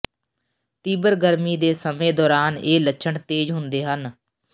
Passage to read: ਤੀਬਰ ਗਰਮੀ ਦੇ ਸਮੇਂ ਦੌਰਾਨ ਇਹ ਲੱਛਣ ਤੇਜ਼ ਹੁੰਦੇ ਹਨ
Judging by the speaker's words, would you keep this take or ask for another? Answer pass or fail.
pass